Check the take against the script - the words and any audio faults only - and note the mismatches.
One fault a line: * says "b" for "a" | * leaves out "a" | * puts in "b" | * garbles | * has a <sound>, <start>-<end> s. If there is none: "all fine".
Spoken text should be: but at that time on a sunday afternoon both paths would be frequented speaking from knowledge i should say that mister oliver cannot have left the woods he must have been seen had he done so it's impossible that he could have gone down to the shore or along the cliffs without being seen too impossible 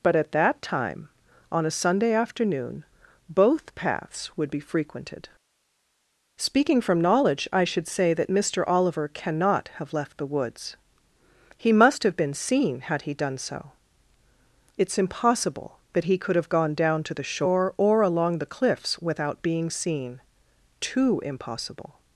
all fine